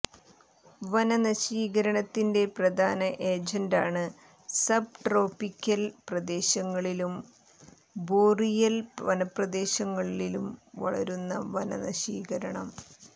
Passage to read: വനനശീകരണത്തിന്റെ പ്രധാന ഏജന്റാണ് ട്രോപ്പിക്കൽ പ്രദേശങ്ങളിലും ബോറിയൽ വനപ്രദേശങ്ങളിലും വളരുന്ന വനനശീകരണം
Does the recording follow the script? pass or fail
fail